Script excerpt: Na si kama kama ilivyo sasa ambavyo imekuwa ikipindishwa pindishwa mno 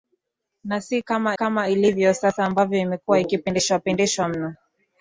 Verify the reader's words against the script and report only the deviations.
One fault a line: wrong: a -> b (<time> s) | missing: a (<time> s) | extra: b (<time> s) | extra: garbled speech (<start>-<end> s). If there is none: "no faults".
no faults